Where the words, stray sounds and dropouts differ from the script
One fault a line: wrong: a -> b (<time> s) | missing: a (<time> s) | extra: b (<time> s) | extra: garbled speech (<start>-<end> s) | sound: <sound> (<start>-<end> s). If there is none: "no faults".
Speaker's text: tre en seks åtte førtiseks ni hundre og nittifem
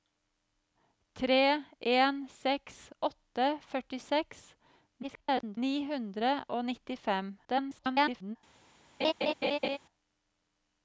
extra: garbled speech (5.0-5.6 s)
extra: garbled speech (7.4-8.4 s)
sound: laugh (9.0-9.8 s)